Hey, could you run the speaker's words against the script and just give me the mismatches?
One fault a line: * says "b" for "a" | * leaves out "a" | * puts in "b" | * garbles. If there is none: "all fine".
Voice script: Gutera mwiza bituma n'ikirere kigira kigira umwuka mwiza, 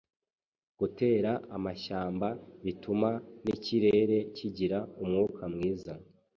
* says "amashyamba" for "mwiza"
* leaves out "kigira"